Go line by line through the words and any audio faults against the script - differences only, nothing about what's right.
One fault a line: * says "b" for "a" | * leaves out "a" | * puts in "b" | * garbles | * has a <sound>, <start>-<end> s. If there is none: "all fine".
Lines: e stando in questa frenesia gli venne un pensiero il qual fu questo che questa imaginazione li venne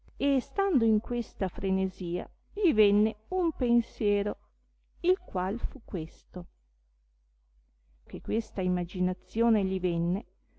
all fine